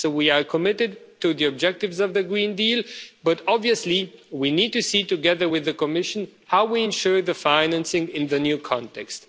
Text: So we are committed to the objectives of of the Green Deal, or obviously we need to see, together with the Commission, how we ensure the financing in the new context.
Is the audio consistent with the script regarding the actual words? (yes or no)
no